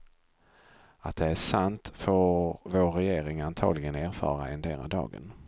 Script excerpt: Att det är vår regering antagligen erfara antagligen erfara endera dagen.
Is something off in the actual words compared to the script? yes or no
yes